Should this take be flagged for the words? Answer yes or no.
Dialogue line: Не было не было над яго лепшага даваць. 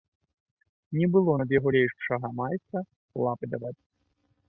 yes